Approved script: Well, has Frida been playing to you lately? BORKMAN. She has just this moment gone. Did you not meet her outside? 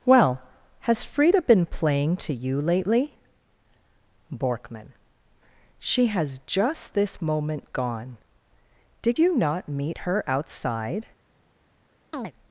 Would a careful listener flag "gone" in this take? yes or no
no